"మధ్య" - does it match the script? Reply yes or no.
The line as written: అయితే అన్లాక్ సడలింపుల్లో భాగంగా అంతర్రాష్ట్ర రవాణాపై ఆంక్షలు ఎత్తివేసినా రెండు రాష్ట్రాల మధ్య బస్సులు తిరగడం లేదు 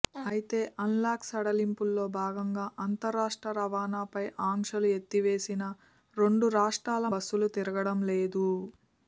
no